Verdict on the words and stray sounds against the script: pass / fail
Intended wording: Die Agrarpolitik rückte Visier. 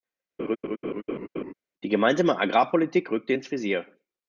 fail